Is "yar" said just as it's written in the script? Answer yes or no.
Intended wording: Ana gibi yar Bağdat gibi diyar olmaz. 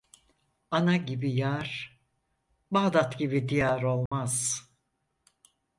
yes